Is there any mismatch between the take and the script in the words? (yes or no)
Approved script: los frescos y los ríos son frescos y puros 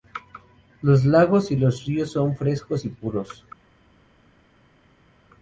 yes